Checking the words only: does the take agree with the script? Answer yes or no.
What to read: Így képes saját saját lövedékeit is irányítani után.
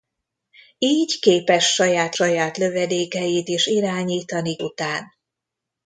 yes